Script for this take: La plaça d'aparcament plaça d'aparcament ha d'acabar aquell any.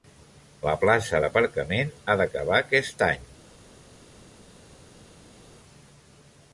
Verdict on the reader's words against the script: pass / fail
fail